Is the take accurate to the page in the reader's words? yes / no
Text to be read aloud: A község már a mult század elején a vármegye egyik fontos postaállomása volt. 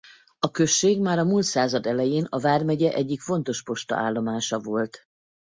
yes